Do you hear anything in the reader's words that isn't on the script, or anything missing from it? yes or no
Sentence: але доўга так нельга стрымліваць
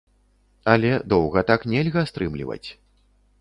no